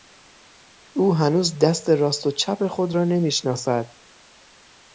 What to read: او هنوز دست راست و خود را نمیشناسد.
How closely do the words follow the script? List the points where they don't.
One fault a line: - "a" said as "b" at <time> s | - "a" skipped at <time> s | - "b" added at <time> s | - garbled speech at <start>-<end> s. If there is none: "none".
- "چپ" added at 2.3 s